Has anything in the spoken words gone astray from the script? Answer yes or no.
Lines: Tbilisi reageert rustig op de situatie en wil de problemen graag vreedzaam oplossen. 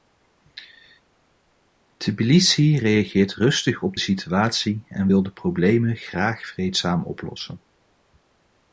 yes